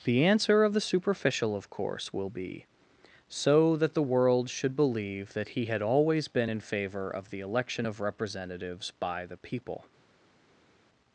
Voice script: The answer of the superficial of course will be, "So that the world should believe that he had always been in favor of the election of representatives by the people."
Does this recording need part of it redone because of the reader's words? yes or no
no